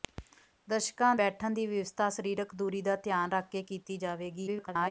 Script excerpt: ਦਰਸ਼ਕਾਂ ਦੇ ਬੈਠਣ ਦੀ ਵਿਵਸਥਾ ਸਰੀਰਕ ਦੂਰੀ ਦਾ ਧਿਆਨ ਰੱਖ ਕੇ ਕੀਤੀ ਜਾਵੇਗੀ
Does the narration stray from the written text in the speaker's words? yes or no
yes